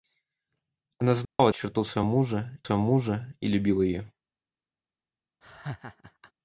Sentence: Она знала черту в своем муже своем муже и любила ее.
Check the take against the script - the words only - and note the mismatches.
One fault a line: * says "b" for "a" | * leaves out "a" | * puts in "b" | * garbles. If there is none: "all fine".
all fine